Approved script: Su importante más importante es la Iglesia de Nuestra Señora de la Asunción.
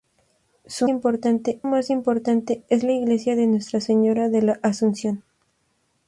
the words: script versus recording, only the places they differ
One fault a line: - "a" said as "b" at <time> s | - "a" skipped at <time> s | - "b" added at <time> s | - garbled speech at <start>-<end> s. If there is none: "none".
none